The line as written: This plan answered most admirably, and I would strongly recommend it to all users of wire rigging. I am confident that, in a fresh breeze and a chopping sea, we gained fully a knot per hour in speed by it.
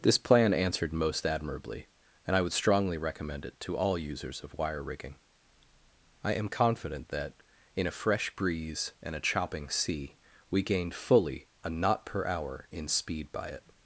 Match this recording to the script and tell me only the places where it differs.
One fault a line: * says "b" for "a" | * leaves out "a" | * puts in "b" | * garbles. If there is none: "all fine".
all fine